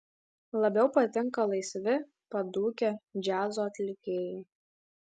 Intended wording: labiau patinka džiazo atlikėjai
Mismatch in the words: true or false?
true